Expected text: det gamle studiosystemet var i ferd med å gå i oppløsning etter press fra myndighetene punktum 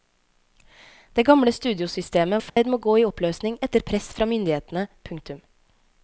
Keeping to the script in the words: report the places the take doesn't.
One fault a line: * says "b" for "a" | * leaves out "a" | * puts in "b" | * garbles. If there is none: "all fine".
* leaves out "var"